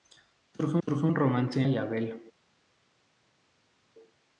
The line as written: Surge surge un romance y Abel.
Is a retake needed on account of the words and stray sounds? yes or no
no